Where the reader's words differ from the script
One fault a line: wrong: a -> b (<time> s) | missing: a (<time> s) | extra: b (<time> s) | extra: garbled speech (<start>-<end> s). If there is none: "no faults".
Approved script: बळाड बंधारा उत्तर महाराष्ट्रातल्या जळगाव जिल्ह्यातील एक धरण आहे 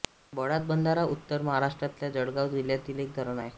no faults